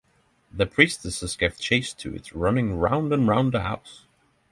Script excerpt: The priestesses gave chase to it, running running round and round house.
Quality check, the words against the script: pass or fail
fail